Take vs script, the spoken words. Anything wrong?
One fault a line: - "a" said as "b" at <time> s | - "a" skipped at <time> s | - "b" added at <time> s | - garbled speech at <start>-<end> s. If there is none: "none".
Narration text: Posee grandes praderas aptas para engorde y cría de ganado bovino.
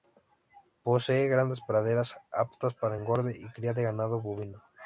none